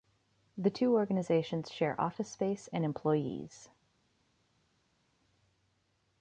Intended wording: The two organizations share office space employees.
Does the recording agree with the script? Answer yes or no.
no